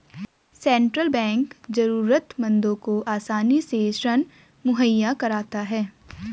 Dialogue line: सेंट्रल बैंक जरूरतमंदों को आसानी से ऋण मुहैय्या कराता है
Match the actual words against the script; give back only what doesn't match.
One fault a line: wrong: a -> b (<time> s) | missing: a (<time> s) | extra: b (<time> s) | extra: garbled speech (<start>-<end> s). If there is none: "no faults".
no faults